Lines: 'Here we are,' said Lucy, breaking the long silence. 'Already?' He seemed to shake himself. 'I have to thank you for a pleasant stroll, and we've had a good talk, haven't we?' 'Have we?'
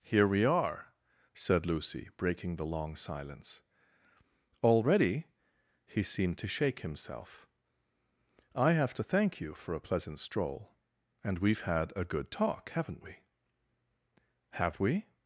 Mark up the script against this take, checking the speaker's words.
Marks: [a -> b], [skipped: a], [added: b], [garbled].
'Here we are,' said Lucy, breaking the long silence. 'Already?' He seemed to shake himself. 'I have to thank you for a pleasant stroll, and we've had a good talk, haven't we?' 'Have we?'